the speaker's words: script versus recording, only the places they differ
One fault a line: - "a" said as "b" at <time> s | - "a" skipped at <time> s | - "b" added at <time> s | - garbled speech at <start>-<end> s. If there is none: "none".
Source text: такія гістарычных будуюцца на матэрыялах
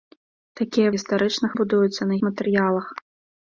none